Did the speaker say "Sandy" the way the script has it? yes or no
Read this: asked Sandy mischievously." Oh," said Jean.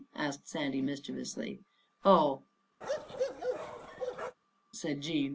yes